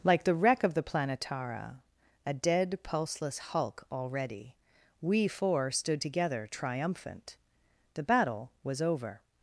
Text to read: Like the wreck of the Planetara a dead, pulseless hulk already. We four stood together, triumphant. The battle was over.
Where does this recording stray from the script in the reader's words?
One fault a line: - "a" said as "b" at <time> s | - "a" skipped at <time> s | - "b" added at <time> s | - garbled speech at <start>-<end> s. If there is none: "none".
none